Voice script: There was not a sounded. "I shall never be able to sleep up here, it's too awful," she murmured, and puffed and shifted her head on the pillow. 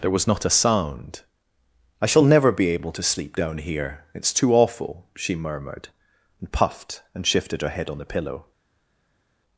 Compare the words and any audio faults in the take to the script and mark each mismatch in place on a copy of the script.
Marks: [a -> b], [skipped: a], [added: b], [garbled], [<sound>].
There was not a [sounded. -> sound] "I shall never be able to sleep [up -> down] here, it's too awful," she murmured, and puffed and shifted her head on the pillow.